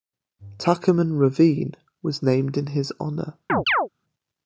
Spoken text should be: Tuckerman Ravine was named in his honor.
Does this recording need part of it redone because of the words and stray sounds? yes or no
yes